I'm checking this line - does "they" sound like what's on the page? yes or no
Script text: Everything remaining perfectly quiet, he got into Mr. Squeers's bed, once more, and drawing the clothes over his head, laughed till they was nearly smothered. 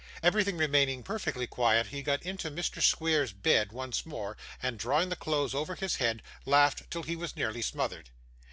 no